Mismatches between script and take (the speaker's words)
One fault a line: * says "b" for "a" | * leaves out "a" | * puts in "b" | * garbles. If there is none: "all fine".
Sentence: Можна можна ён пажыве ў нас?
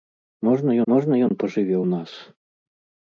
all fine